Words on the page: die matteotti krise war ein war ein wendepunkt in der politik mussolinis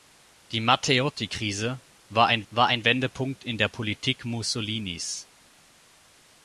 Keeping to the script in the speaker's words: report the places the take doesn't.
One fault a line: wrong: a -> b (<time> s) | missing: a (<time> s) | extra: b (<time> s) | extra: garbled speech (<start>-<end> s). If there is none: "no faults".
no faults